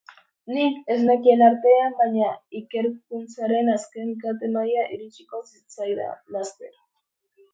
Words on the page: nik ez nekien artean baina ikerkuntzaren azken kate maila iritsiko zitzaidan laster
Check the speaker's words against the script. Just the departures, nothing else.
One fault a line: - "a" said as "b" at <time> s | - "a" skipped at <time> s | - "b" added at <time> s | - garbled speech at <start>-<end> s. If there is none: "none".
none